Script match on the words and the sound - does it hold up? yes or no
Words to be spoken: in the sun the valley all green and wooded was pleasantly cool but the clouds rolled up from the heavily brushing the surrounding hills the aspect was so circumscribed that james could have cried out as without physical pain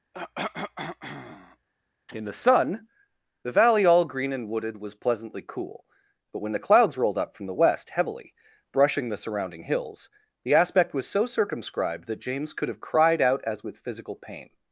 no